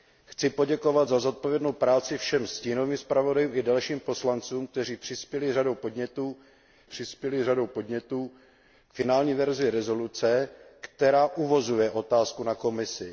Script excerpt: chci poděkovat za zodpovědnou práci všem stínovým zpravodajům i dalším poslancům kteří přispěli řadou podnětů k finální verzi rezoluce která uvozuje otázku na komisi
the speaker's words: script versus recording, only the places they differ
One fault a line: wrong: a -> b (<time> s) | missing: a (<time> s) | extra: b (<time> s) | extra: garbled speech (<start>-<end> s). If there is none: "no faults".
extra: přispěli řadou podnětů (6.8 s)